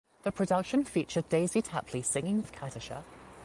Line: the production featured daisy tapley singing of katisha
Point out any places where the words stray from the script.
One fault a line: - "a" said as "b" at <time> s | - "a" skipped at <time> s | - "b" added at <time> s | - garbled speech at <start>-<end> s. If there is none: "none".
none